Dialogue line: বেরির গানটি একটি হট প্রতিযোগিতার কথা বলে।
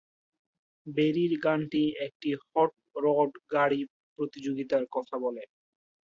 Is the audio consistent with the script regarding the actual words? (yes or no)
no